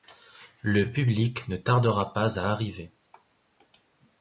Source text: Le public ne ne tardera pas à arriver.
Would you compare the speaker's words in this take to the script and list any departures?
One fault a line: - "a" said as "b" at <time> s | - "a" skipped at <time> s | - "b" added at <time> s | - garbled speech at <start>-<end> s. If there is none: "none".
- "ne" skipped at 1.6 s